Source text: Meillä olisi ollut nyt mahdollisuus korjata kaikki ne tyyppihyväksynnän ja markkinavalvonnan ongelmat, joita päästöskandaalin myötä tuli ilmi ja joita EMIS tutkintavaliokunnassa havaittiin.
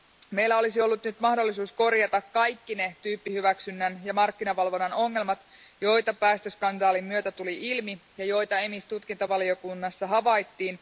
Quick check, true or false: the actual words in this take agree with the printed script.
true